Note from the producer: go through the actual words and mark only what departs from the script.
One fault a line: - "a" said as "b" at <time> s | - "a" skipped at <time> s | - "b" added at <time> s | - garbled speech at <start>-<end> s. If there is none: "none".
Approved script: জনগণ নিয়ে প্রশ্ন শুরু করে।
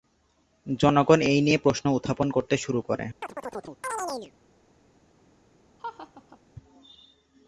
- "এই" added at 1.2 s
- "উত্থাপন করতে" added at 1.9 s